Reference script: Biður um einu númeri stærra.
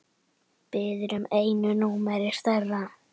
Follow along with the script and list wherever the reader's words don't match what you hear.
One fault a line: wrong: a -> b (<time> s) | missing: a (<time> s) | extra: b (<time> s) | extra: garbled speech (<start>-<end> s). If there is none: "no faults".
no faults